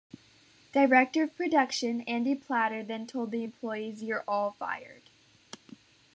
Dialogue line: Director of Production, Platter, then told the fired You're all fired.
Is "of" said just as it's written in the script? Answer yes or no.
yes